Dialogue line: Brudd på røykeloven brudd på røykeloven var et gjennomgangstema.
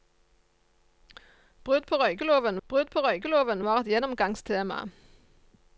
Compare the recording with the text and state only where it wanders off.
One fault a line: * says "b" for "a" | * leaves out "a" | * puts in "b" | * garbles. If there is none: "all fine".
all fine